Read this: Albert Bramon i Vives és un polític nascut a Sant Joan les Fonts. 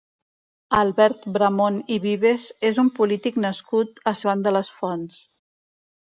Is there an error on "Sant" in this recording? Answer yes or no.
yes